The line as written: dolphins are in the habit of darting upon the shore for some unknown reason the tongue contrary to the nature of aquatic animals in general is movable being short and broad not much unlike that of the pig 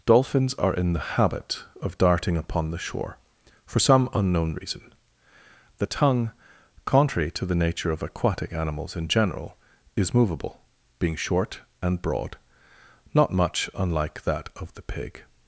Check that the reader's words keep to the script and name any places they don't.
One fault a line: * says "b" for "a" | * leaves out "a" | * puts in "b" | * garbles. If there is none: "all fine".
all fine